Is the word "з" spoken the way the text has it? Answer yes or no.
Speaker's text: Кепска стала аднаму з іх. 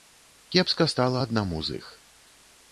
yes